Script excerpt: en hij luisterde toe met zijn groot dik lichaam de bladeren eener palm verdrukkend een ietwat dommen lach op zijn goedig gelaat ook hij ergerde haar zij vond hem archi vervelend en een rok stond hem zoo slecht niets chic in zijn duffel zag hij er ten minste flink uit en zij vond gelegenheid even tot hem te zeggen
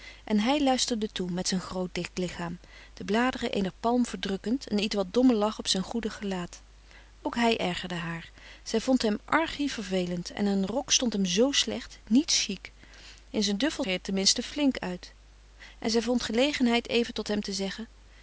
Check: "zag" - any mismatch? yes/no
yes